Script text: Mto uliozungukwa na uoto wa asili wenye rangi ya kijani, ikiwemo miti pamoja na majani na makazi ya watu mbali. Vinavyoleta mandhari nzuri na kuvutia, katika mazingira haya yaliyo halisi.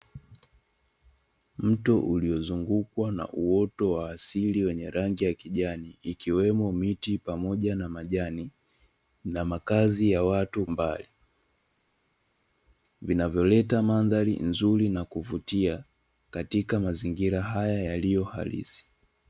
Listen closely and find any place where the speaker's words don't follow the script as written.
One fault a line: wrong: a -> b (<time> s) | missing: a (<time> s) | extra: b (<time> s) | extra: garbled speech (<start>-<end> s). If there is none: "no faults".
no faults